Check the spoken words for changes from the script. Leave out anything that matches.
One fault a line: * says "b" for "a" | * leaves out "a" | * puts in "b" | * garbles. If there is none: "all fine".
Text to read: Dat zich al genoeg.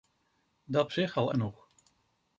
all fine